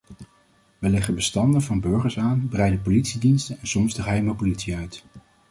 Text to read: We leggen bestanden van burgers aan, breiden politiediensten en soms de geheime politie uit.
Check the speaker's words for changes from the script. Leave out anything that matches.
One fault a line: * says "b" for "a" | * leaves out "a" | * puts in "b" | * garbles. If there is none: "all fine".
all fine